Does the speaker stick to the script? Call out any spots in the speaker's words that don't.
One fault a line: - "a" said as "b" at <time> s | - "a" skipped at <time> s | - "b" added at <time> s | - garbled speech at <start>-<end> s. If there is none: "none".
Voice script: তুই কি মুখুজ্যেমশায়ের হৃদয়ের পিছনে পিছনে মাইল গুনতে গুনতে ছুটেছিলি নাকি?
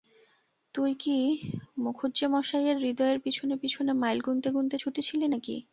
none